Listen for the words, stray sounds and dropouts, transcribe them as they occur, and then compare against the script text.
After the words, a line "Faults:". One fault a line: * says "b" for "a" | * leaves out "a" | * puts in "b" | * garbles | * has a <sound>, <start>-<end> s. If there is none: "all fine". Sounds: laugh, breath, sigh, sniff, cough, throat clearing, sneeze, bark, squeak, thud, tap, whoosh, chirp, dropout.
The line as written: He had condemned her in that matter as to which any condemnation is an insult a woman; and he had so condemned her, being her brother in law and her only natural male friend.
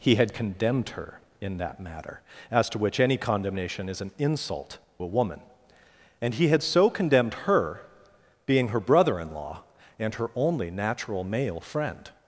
He had condemned her in that matter as to which any condemnation is an insult a woman; and he had so condemned her, being her brother in law and her only natural male friend.
Faults:
all fine